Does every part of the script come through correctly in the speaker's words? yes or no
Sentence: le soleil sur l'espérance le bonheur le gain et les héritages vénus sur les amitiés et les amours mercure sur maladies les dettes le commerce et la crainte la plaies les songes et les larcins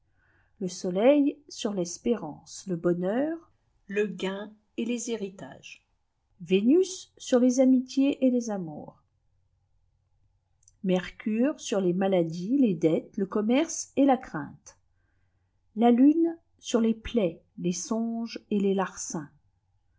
no